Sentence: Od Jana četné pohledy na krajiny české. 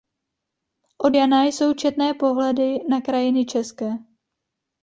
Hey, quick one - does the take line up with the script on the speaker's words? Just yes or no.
no